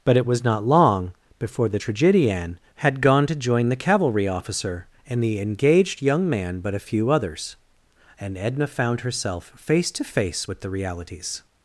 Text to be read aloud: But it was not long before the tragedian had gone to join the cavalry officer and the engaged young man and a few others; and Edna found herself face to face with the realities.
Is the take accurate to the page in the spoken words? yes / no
no